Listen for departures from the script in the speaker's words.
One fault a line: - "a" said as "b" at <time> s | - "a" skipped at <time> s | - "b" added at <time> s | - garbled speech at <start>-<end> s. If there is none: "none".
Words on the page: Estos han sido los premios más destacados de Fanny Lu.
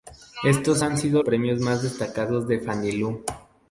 - "los" skipped at 1.2 s